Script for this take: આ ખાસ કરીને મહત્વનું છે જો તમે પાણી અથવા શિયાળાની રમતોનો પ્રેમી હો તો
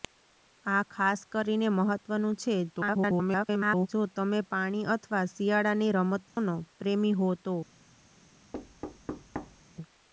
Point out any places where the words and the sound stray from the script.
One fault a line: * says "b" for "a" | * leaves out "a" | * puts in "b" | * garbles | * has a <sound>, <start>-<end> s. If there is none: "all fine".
* garbles
* has a dropout, 6.3-6.4 s
* has a thud, 8.5-9.6 s